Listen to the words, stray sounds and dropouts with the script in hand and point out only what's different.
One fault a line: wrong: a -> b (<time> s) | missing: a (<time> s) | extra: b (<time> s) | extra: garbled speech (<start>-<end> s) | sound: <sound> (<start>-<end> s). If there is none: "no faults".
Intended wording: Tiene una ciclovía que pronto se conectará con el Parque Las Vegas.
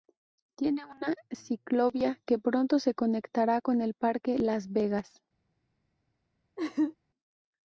sound: laugh (6.6-6.9 s)